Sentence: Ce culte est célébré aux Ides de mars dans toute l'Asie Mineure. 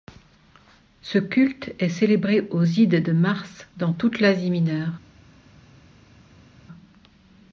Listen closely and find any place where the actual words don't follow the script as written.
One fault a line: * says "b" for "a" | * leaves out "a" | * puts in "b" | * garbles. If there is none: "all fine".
all fine